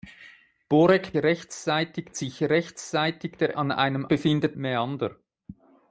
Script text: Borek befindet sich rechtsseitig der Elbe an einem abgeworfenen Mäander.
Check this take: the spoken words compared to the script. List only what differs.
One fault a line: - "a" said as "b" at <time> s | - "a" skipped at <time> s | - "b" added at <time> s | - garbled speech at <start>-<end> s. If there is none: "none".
- "befindet" said as "rechtsseitig" at 1.2 s
- "Elbe" skipped at 3.6 s
- "abgeworfenen" said as "befindet" at 4.1 s